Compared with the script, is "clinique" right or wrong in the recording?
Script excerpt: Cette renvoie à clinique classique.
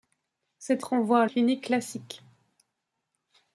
right